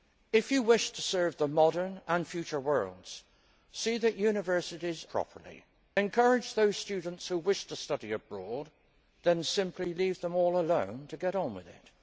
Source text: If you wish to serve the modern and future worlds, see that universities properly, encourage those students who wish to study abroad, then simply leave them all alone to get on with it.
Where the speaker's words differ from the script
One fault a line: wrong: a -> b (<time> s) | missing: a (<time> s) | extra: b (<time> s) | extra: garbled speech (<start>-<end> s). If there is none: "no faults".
no faults